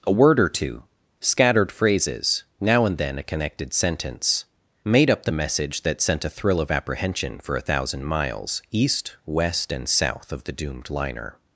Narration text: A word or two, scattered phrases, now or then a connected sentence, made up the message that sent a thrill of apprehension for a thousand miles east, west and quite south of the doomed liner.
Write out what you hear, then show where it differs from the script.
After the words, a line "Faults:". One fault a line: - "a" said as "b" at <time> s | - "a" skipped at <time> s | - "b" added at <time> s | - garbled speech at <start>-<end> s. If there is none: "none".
A word or two, scattered phrases, now and then a connected sentence, made up the message that sent a thrill of apprehension for a thousand miles east, west and south of the doomed liner.
Faults:
- "or" said as "and" at 2.9 s
- "quite" skipped at 9.9 s